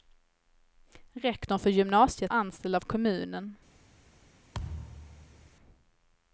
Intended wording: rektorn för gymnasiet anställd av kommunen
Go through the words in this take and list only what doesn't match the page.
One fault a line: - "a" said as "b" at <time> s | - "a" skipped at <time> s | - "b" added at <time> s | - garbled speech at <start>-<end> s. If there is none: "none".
none